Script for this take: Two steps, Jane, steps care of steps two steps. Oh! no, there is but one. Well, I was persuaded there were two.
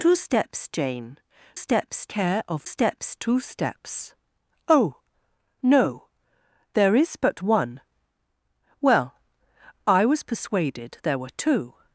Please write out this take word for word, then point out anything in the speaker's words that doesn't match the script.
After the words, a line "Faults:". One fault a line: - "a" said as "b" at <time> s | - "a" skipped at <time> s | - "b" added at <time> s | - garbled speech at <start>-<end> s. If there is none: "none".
Two steps, Jane, steps care of steps two steps. Oh! no, there is but one. Well, I was persuaded there were two.
Faults:
none